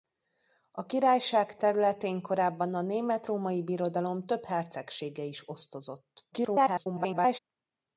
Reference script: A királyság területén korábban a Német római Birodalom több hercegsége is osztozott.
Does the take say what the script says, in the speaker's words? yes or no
no